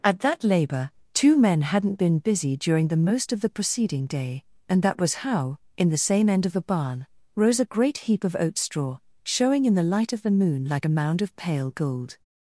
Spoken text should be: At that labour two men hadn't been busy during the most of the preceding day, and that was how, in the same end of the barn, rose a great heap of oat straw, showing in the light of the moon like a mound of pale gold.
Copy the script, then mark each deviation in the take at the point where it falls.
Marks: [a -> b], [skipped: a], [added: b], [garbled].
At that labour two men hadn't been busy during the most of the preceding day, and that was how, in the same end of the barn, rose a great heap of oat straw, showing in the light of the moon like a mound of pale gold.